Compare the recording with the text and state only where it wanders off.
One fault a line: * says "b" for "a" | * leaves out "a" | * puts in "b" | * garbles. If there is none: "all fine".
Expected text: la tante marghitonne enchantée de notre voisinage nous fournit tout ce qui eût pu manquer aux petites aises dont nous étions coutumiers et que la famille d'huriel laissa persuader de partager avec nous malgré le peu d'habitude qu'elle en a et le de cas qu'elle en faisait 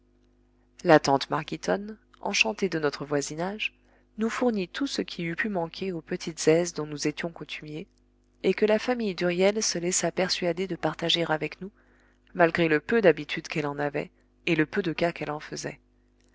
* puts in "se"
* says "avait" for "a"
* puts in "peu"